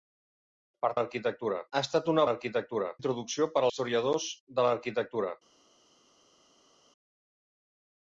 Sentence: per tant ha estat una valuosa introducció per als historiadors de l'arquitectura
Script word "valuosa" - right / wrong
wrong